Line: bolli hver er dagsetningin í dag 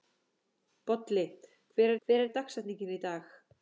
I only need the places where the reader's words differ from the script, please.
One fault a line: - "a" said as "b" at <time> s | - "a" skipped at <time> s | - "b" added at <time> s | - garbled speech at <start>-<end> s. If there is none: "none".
- "hver" added at 2.0 s